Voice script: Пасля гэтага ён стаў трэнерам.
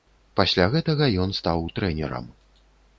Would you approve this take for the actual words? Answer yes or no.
yes